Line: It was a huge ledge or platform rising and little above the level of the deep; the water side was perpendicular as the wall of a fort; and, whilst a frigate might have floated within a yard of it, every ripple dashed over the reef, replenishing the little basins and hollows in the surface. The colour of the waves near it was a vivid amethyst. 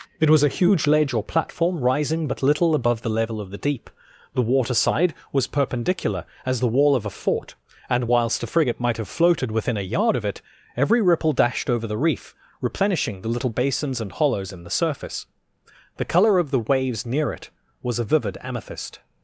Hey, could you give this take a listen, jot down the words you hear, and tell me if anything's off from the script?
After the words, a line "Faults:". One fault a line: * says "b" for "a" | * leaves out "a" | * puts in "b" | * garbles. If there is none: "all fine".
It was a huge ledge or platform rising but little above the level of the deep; the water side was perpendicular as the wall of a fort; and, whilst a frigate might have floated within a yard of it, every ripple dashed over the reef, replenishing the little basins and hollows in the surface. The colour of the waves near it was a vivid amethyst.
Faults:
* says "but" for "and"